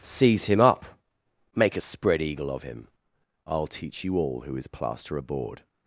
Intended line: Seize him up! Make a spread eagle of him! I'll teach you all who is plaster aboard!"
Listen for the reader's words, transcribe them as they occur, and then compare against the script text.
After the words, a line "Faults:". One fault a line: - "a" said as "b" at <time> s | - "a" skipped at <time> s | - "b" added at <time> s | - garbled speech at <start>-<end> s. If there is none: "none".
Seize him up! Make a spread eagle of him! I'll teach you all who is plaster aboard!"
Faults:
none